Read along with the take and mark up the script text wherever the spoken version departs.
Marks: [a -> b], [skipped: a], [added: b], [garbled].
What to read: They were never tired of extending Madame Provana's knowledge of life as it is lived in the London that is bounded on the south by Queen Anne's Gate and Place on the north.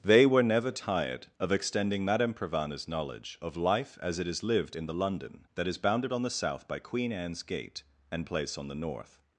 They were never tired of extending Madame Provana's knowledge of life as it is lived in the London that is bounded on the south by Queen Anne's Gate and Place on the north.